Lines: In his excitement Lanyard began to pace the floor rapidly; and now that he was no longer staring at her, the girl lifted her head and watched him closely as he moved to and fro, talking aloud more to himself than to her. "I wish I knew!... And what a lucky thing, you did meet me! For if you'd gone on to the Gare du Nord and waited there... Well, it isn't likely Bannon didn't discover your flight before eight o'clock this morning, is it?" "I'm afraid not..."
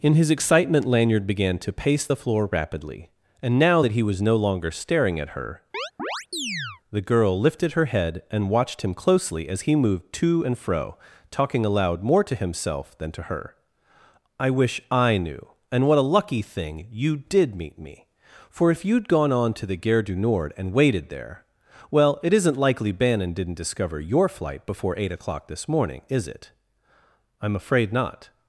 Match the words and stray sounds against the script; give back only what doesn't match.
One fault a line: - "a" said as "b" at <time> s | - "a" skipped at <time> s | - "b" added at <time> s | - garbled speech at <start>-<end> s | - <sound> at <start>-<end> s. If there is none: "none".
- chirp at 5.7-6.8 s